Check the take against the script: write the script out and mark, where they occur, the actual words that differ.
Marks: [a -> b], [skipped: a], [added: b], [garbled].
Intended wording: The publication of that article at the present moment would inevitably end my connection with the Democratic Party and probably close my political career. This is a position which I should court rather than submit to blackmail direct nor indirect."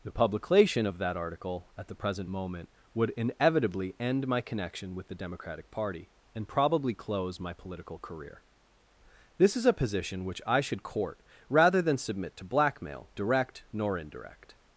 The publication of that article at the present moment would inevitably end my connection with the Democratic Party and probably close my political career. This is a position which I should court rather than submit to blackmail direct nor indirect."